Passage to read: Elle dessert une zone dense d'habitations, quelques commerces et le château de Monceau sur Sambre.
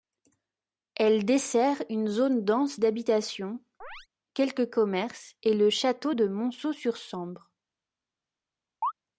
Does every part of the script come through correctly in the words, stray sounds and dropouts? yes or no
no